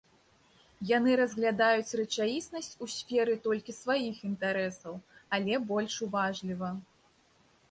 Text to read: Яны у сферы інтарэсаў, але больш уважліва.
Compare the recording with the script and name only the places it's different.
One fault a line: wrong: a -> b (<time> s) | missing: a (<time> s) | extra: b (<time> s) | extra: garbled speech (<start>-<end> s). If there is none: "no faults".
extra: разглядаюць рэчаіснасць (1.2 s)
extra: толькі сваіх (3.5 s)